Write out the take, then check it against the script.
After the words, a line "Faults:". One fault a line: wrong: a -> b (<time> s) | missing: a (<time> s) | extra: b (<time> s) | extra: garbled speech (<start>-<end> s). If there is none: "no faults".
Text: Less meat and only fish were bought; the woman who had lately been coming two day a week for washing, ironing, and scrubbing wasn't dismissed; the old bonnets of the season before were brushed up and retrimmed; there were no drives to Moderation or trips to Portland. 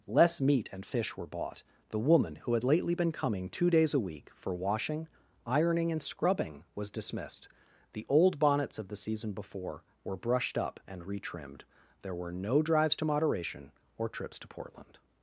Less meat and fish were bought; the woman who had lately been coming two days a week for washing, ironing, and scrubbing was dismissed; the old bonnets of the season before were brushed up and retrimmed; there were no drives to Moderation or trips to Portland.
Faults:
missing: only (0.8 s)
wrong: day -> days (3.7 s)
wrong: wasn't -> was (6.7 s)